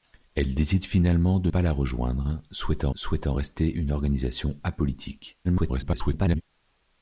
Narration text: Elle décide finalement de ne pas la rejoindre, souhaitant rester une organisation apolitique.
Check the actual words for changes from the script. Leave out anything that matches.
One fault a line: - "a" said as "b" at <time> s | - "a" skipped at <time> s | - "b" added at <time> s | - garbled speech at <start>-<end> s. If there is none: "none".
- "ne" skipped at 1.5 s
- "souhaitant" added at 2.9 s
- garbled speech at 5.4-6.4 s